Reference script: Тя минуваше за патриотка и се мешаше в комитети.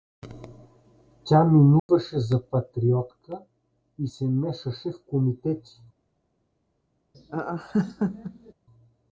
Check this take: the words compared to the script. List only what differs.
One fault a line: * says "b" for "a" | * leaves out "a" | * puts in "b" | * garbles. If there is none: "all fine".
all fine